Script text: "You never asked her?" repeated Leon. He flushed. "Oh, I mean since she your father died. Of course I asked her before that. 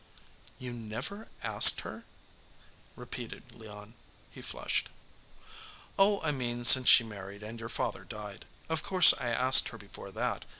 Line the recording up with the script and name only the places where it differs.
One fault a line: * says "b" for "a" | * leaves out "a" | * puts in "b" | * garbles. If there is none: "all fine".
* puts in "married and"